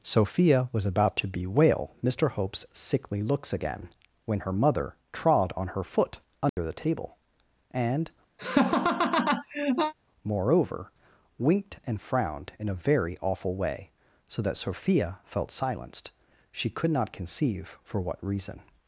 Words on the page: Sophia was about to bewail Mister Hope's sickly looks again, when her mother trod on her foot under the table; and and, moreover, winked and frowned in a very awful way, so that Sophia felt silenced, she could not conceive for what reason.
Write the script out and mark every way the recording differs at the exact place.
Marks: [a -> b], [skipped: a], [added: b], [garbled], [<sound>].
Sophia was about to bewail Mister Hope's sickly looks again, when her mother trod on her foot under [dropout] the table; and [skipped: and,] [laugh] moreover, winked and frowned in a very awful way, so that Sophia felt silenced, she could not conceive for what reason.